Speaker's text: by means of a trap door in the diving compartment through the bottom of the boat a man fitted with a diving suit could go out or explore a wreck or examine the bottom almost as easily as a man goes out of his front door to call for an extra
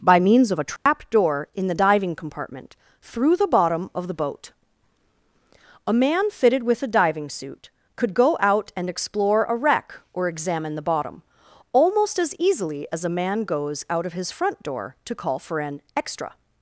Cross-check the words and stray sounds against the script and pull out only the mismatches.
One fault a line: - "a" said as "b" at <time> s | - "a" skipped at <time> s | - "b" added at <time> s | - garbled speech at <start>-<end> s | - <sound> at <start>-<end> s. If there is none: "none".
- dropout at 0.8-0.9 s
- "or" said as "and" at 8.8 s